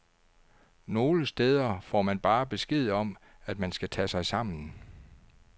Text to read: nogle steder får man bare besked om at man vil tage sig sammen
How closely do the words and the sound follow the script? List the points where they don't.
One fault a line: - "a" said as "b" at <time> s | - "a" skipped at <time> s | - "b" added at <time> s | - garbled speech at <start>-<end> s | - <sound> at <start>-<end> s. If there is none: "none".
- "vil" said as "skal" at 3.7 s